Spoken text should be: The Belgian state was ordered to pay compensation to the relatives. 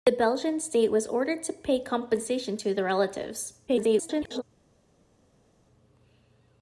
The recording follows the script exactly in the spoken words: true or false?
false